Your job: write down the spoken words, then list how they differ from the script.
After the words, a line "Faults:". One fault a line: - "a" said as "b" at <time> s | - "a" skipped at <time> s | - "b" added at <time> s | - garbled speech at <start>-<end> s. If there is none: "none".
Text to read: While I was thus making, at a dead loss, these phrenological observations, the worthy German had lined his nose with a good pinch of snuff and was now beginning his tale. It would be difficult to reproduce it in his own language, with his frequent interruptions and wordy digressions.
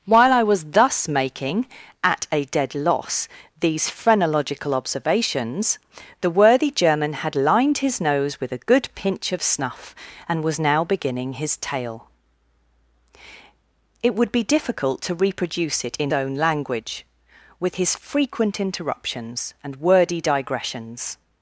While I was thus making, at a dead loss, these phrenological observations, the worthy German had lined his nose with a good pinch of snuff and was now beginning his tale. It would be difficult to reproduce it in own language, with his frequent interruptions and wordy digressions.
Faults:
- "his" skipped at 16.1 s